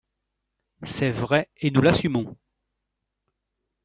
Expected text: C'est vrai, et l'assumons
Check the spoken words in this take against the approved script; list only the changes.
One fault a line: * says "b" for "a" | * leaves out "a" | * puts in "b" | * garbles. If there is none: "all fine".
* puts in "nous"